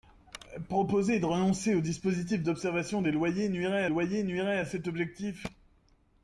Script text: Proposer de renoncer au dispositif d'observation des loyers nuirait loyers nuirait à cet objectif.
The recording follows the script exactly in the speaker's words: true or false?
true